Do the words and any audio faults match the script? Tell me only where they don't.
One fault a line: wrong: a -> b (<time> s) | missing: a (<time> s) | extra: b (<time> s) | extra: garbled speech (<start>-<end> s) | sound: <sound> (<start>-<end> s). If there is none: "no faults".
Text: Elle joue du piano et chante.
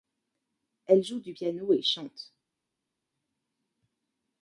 no faults